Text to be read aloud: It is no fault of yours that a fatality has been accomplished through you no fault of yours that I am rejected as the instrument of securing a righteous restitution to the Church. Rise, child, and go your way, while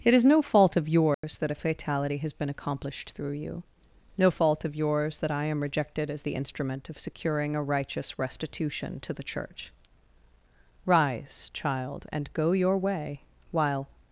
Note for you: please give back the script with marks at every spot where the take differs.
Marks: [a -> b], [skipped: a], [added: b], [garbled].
It is no fault of yours that a fatality has been accomplished through you no fault of yours that I am rejected as the instrument of securing a righteous restitution to the Church. Rise, child, and go your way, while